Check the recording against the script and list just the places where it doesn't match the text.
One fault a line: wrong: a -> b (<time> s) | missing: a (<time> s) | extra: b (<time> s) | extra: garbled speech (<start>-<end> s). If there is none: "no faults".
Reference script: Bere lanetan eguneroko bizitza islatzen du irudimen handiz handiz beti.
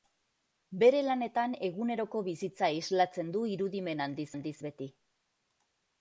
no faults